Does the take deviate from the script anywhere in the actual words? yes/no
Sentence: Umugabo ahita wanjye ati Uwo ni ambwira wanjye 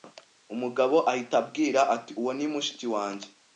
yes